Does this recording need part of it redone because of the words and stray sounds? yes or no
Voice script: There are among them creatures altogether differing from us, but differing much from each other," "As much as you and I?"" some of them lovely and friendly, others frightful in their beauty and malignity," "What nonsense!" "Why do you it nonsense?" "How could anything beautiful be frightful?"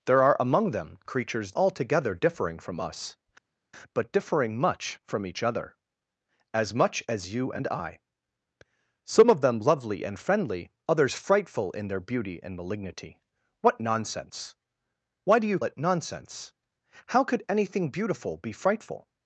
no